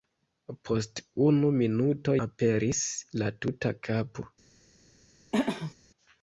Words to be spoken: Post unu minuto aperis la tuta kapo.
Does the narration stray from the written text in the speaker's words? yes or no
no